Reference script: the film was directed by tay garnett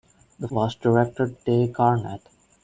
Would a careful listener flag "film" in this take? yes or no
yes